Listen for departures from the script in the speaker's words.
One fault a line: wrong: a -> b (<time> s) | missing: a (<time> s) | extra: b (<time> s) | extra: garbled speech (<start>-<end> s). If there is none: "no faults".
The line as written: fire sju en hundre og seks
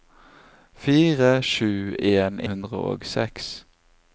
no faults